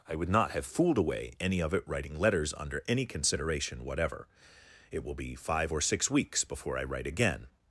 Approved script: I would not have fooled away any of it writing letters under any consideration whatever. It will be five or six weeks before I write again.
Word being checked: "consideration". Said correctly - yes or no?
yes